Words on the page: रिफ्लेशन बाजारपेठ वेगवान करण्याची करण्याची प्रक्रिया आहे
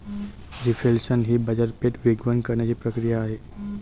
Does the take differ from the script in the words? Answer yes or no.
yes